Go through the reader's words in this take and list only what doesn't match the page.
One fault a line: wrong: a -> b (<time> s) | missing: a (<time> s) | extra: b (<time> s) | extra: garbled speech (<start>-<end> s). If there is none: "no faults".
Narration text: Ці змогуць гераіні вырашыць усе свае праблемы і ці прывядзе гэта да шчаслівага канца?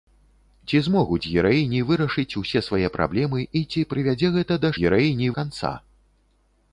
wrong: шчаслівага -> гераіні (4.8 s)